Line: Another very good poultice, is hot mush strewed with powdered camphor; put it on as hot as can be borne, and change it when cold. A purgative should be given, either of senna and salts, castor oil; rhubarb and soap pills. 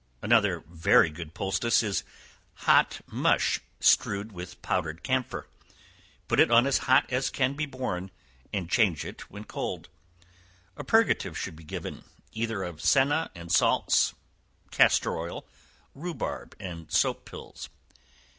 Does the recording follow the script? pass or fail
pass